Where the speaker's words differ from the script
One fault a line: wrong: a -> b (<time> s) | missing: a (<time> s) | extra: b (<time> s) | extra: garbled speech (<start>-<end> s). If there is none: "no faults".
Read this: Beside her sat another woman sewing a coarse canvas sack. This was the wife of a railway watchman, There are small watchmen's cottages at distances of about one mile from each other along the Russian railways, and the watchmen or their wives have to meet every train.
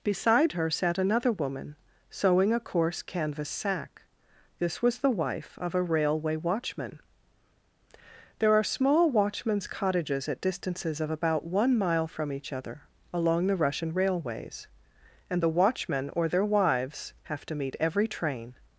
no faults